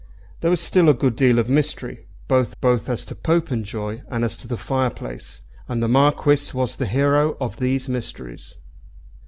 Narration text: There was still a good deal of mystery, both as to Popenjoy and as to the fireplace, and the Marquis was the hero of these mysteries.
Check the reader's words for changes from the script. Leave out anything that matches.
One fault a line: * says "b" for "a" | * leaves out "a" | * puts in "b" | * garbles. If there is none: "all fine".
* puts in "both"